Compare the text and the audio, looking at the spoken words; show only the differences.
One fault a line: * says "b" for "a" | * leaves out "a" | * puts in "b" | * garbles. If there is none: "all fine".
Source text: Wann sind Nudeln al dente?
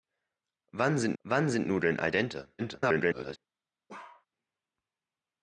* puts in "wann sind"
* garbles